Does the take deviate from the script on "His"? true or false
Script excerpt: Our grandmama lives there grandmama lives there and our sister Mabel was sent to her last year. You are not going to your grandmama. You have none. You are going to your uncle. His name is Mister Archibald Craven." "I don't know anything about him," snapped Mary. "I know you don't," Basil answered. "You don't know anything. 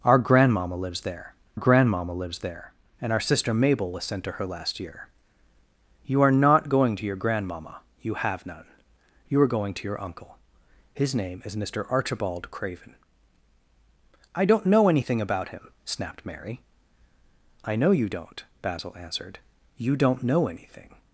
false